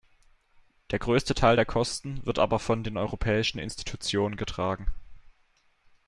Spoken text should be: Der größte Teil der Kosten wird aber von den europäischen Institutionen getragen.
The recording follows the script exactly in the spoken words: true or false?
true